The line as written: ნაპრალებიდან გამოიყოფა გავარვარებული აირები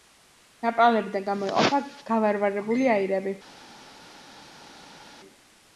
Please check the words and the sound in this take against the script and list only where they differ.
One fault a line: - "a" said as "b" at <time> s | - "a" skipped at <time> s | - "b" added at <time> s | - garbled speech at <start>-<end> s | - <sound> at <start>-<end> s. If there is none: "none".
none